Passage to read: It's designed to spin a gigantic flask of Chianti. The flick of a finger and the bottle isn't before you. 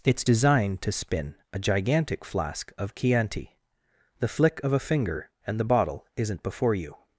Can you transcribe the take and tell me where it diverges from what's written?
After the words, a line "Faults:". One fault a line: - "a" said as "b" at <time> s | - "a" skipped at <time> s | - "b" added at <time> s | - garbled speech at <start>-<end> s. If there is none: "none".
It's designed to spin a gigantic flask of Chianti. The flick of a finger and the bottle isn't before you.
Faults:
none